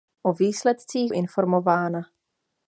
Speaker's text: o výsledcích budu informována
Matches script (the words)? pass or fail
fail